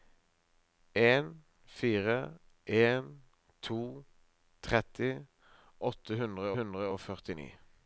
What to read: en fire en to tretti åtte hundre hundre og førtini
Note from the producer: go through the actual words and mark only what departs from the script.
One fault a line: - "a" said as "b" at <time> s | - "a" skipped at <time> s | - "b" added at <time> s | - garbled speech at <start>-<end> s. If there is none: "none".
none